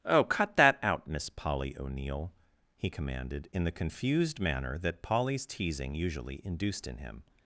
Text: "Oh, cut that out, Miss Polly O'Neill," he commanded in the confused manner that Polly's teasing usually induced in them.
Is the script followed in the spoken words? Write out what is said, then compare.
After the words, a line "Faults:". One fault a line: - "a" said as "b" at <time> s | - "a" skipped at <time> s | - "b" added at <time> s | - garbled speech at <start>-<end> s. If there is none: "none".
"Oh, cut that out, Miss Polly O'Neill," he commanded in the confused manner that Polly's teasing usually induced in him.
Faults:
- "them" said as "him" at 7.0 s